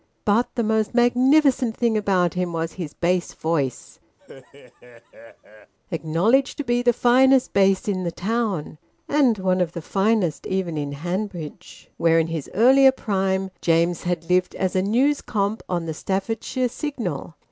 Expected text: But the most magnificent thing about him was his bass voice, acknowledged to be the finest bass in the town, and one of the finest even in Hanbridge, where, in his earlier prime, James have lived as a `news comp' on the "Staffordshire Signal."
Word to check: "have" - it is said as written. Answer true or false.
false